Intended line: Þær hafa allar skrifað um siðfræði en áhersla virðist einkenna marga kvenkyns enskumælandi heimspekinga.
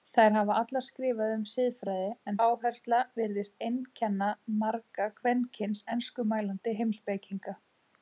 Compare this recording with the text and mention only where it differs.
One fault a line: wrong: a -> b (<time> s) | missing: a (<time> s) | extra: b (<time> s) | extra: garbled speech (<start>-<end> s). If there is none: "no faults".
no faults